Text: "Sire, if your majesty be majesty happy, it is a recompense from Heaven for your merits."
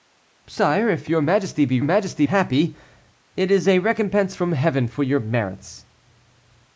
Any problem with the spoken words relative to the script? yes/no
no